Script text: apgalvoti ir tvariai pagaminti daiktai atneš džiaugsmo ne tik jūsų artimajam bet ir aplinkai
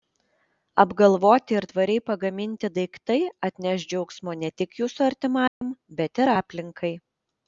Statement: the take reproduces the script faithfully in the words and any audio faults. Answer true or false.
false